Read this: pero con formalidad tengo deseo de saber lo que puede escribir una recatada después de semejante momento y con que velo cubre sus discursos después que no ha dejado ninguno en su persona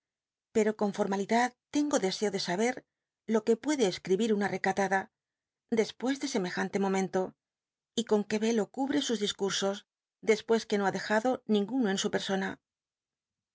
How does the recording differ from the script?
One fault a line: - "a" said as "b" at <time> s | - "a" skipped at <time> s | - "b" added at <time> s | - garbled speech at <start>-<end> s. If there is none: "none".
none